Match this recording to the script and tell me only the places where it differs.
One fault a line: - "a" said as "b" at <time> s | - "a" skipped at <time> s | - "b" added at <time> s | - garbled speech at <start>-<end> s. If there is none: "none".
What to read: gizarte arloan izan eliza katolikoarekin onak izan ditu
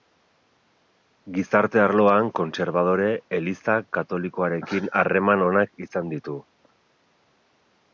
- "izan" said as "kontserbadore" at 2.4 s
- "harreman" added at 5.0 s